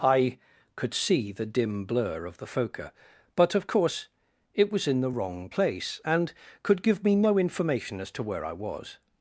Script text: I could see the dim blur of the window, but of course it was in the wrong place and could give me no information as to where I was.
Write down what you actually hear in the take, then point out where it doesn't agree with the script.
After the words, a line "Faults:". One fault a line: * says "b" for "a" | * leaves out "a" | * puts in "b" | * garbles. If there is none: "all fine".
I could see the dim blur of the phoca, but of course it was in the wrong place and could give me no information as to where I was.
Faults:
* says "phoca" for "window"